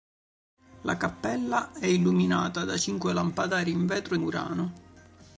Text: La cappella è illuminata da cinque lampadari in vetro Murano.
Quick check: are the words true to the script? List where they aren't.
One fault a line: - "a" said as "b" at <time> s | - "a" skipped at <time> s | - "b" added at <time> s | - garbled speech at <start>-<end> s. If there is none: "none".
none